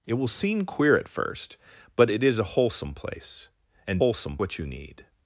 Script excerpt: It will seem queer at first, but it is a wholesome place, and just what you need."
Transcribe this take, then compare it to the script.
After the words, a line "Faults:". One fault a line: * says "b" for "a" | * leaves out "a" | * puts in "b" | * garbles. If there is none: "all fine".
It will seem queer at first, but it is a wholesome place, and wholesome what you need."
Faults:
* says "wholesome" for "just"